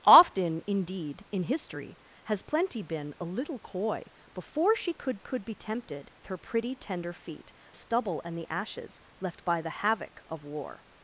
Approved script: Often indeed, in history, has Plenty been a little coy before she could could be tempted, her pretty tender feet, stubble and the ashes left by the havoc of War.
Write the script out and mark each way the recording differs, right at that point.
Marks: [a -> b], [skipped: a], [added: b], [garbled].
Often indeed, in history, has Plenty been a little coy before she could could be tempted, her pretty tender feet, stubble and the ashes left by the havoc of War.